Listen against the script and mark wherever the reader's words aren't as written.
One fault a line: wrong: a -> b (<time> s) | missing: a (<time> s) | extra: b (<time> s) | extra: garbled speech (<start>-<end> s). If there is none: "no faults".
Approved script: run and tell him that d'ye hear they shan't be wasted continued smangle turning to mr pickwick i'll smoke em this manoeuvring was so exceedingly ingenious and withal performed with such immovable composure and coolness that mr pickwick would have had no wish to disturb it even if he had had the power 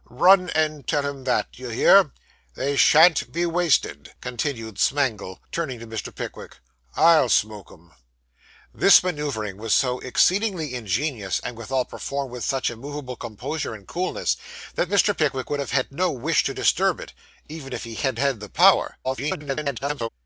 extra: garbled speech (19.0-20.1 s)